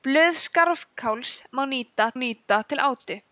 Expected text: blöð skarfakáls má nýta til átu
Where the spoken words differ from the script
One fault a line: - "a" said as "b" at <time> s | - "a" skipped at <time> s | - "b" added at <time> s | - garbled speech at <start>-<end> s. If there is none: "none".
- "nýta" added at 2.2 s